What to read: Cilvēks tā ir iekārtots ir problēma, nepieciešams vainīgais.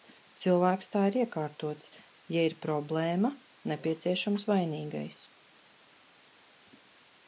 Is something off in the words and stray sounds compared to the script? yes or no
yes